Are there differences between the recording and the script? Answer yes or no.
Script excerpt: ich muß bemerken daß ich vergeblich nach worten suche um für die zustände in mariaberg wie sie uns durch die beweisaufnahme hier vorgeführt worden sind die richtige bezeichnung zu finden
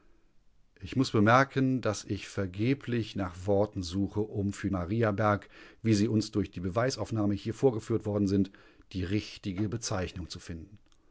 yes